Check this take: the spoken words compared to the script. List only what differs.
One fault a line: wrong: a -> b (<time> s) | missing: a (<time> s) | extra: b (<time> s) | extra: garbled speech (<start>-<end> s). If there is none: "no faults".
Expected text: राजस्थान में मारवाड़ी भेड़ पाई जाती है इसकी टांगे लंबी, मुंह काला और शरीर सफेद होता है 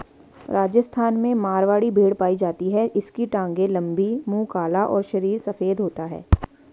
no faults